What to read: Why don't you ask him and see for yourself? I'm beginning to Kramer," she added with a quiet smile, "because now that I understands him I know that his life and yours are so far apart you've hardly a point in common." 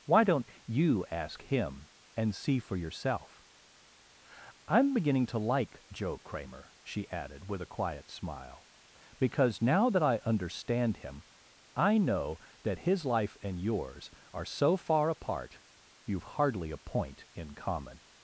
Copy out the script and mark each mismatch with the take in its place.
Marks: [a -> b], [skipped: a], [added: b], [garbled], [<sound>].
Why don't you ask him and see for yourself? I'm beginning to [added: like Joe] Kramer," she added with a quiet smile, "because now that I [understands -> understand] him I know that his life and yours are so far apart you've hardly a point in common."